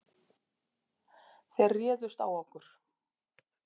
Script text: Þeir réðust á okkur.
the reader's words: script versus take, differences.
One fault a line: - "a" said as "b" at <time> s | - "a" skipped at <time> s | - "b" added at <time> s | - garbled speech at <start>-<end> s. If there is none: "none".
none